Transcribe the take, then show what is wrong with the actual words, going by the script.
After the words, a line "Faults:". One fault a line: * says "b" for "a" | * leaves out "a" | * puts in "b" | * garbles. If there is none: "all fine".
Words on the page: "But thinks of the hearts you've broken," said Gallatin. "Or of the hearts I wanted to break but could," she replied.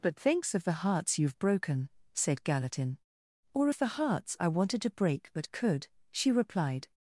"But thinks of the hearts you've broken," said Gallatin. "Or of the hearts I wanted to break but could," she replied.
Faults:
all fine